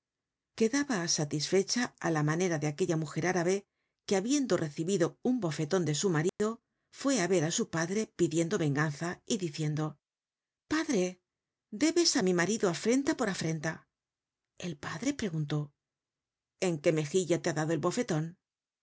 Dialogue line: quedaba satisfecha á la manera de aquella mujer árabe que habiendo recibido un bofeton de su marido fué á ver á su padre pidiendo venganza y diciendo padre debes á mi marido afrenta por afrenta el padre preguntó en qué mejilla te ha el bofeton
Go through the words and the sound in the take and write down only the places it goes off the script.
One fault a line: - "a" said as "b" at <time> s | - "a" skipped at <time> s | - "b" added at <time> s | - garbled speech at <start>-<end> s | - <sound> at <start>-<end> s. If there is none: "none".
- dropout at 6.3-6.4 s
- "dado" added at 17.6 s